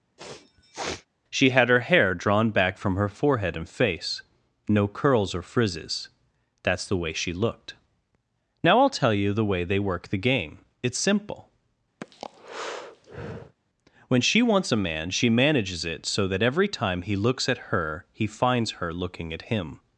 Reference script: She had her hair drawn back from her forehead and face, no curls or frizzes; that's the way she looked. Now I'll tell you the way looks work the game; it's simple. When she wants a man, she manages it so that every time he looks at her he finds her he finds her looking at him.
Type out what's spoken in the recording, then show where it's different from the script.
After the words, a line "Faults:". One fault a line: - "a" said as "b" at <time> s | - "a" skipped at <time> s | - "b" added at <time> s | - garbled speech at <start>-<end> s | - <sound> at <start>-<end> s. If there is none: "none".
She had her hair drawn back from her forehead and face, no curls or frizzes; that's the way she looked. Now I'll tell you the way they work the game; it's simple. When she wants a man, she manages it so that every time he looks at her he finds her looking at him.
Faults:
- sneeze at 0.2-1.1 s
- "looks" said as "they" at 9.6 s
- breath at 12.0-13.6 s
- "he finds her" skipped at 18.9 s